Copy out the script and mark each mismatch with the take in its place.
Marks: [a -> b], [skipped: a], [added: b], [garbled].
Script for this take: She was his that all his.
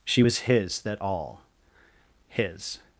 She was his that all his.